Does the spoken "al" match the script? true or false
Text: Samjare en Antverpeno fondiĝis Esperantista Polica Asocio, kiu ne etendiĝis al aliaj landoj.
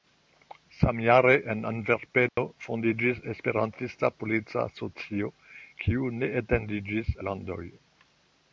false